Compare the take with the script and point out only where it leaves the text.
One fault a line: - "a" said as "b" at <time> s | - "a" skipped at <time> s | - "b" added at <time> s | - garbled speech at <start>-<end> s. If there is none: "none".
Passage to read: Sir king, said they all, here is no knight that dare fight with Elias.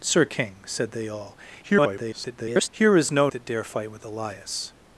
- garbled speech at 1.6-2.7 s
- "knight" skipped at 3.3 s